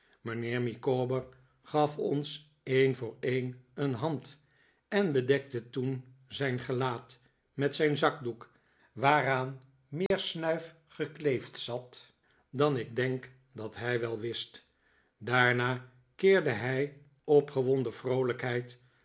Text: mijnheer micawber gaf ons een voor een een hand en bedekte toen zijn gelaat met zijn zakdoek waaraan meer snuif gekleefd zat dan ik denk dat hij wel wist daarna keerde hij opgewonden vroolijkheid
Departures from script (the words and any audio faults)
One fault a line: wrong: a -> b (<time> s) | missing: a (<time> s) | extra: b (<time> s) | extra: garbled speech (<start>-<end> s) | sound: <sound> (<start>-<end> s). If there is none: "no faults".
sound: dropout (10.1-10.1 s)